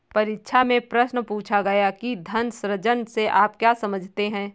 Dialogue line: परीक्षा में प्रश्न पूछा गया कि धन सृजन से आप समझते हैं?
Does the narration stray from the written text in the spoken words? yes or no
yes